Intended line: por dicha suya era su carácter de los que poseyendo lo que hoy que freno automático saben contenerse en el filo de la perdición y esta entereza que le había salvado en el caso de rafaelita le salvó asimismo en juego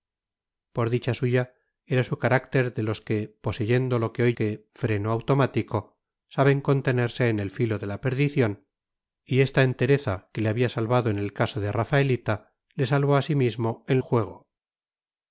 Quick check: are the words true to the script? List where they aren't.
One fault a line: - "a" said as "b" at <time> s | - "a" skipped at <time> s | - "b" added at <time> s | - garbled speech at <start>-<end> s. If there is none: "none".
none